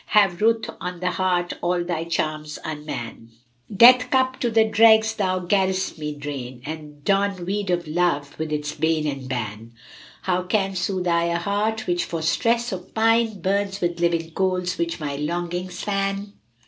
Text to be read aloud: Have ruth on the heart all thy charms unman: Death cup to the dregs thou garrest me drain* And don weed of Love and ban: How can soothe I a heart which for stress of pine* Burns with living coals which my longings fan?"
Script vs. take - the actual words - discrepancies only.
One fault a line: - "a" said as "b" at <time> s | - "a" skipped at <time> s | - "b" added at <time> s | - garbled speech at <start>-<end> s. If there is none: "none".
- "with its bane" added at 8.4 s